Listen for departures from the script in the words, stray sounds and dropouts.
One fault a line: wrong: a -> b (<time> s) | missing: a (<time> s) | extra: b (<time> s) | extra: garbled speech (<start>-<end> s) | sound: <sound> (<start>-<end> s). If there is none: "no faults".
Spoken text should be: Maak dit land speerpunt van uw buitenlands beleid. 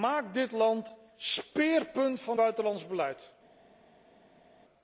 missing: uw (2.4 s)